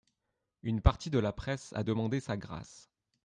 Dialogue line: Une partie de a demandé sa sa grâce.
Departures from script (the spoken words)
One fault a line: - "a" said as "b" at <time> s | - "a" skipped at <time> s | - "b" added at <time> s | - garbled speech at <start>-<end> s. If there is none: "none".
- "la presse" added at 1.2 s
- "sa" skipped at 2.3 s